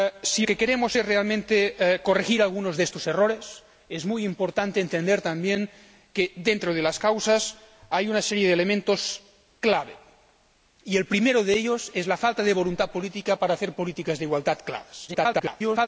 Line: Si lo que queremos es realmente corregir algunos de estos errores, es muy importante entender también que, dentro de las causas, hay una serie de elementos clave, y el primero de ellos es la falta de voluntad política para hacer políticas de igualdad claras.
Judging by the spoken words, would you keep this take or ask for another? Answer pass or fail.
fail